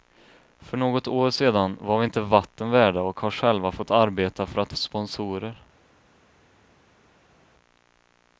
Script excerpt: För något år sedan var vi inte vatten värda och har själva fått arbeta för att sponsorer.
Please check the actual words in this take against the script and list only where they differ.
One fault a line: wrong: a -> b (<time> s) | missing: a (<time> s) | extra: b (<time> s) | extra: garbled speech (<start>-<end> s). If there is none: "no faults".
no faults